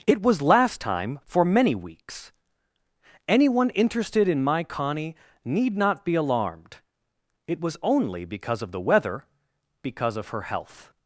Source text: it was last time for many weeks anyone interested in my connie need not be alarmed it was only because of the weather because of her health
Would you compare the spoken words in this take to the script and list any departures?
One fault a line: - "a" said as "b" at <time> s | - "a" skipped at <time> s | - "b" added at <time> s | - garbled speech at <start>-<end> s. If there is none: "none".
none